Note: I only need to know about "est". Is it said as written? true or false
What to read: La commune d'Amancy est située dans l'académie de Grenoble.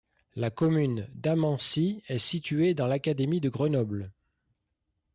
true